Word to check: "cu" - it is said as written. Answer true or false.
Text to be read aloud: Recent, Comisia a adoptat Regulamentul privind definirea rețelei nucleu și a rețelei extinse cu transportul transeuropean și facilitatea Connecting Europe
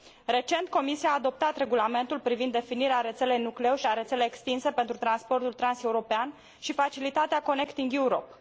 false